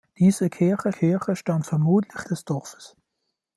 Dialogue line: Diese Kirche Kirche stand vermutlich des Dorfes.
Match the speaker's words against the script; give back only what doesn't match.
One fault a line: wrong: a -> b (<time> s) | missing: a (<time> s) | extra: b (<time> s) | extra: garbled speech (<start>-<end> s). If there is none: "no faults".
no faults